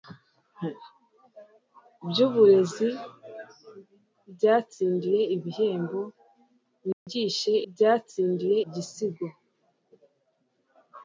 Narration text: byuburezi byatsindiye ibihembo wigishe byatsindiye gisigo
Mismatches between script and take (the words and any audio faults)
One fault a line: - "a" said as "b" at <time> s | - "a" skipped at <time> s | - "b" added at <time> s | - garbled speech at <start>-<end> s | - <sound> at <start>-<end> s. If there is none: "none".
- dropout at 6.9-7.1 s